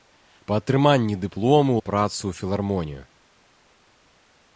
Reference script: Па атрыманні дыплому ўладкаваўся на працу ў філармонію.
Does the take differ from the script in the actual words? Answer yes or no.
yes